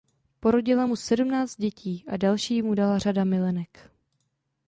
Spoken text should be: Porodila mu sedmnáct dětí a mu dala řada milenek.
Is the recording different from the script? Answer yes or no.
yes